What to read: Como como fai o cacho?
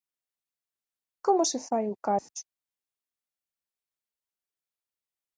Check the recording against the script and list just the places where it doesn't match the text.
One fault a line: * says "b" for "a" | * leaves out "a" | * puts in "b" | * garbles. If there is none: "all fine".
* says "se" for "como"